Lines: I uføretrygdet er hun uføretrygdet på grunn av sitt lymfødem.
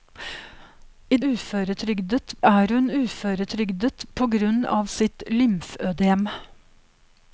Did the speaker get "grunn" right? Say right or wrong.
right